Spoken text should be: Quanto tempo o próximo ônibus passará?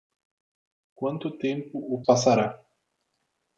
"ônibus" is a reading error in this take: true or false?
true